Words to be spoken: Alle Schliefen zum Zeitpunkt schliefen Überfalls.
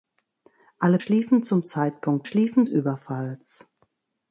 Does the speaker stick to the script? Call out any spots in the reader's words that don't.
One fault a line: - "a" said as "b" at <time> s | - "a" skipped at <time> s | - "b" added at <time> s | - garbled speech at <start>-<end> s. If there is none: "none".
none